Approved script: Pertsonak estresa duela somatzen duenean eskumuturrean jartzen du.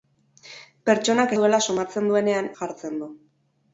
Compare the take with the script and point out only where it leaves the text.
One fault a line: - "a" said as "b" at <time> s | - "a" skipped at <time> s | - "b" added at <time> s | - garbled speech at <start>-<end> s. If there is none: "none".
- "estresa" skipped at 1.4 s
- "eskumuturrean" skipped at 2.5 s